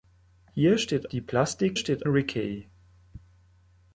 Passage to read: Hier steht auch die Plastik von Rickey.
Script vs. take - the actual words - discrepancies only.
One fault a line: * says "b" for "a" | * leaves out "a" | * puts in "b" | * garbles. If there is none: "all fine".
* leaves out "auch"
* says "steht" for "von"